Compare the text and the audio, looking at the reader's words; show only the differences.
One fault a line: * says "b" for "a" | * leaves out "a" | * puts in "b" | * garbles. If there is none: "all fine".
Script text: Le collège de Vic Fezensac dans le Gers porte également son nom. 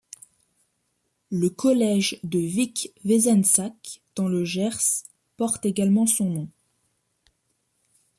all fine